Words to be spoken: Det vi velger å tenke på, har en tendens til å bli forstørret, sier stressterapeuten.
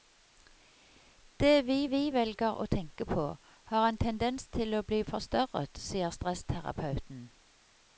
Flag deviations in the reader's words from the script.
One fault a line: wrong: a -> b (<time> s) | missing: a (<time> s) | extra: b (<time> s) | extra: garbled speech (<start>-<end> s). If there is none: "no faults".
extra: vi (1.9 s)